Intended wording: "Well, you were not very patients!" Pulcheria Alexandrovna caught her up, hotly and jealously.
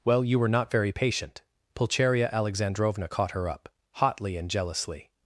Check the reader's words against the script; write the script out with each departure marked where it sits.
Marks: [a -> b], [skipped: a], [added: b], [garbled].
"Well, you were not very [patients!" -> patient] Pulcheria Alexandrovna caught her up, hotly and jealously.